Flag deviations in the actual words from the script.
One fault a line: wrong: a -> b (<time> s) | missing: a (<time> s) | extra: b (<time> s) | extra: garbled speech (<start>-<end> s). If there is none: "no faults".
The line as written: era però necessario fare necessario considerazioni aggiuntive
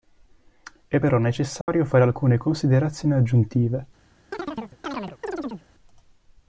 wrong: era -> è (0.9 s)
wrong: necessario -> alcune (2.0 s)